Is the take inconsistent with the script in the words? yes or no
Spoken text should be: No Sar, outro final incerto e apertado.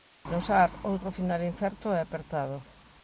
no